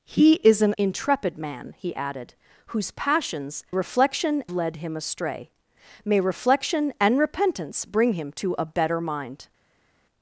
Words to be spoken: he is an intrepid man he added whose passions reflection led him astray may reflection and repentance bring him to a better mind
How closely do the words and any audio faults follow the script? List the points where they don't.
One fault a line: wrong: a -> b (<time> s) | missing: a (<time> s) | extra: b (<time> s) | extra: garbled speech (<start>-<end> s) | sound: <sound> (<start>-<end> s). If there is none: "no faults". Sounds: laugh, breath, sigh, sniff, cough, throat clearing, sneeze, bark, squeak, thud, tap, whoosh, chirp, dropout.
no faults